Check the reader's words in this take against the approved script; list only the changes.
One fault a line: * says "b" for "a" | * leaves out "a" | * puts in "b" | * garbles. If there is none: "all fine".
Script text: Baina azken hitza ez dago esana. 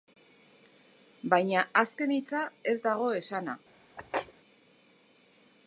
all fine